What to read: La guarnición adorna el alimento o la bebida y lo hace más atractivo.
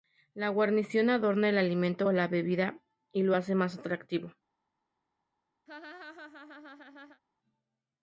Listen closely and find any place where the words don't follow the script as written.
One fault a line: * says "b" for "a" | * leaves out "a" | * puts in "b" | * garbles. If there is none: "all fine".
all fine